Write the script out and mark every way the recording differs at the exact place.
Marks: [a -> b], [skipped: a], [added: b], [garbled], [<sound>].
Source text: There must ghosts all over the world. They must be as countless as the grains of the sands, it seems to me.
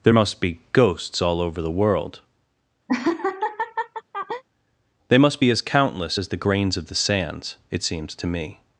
There must [added: be] ghosts all over the world. [laugh] They must be as countless as the grains of the sands, it seems to me.